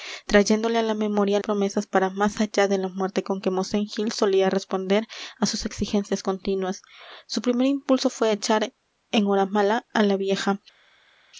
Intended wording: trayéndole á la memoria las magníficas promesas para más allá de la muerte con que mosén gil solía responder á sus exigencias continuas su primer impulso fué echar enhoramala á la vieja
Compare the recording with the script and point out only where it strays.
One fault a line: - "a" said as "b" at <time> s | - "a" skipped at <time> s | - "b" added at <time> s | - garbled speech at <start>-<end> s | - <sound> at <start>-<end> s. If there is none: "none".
- "las magníficas" skipped at 1.4 s